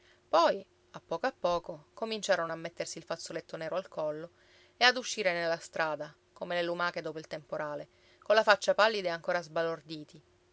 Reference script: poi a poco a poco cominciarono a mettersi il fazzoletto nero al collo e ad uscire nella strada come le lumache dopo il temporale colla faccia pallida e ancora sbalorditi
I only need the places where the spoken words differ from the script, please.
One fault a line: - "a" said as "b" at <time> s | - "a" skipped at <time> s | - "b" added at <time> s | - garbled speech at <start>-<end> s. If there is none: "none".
none